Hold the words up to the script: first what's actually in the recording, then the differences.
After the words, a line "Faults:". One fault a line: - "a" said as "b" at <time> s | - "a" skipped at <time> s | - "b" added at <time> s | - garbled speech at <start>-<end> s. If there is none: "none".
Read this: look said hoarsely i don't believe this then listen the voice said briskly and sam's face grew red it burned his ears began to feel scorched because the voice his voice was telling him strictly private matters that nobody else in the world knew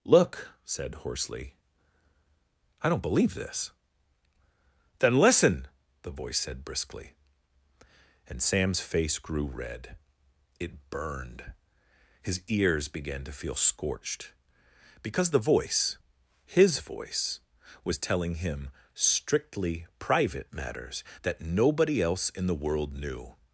look said hoarsely i don't believe this then listen the voice said briskly and sam's face grew red it burned his ears began to feel scorched because the voice his voice was telling him strictly private matters that nobody else in the world knew
Faults:
none